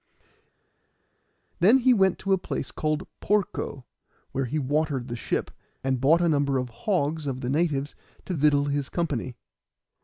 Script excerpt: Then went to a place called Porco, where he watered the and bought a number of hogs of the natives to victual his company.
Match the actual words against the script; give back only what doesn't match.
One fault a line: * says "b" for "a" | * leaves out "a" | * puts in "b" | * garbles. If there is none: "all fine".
* puts in "he"
* puts in "ship"